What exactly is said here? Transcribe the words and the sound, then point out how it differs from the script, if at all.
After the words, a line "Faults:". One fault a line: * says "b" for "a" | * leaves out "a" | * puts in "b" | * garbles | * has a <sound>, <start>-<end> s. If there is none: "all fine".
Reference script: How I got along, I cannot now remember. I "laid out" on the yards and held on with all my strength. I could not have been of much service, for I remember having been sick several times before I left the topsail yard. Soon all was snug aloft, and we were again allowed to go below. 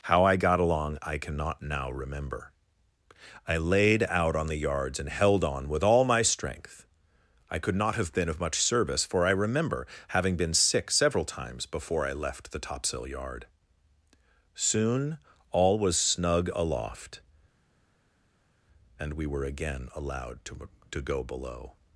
How I got along, I cannot now remember. I "laid out" on the yards and held on with all my strength. I could not have been of much service, for I remember having been sick several times before I left the topsail yard. Soon all was snug aloft, and we were again allowed to to go below.
Faults:
* puts in "to"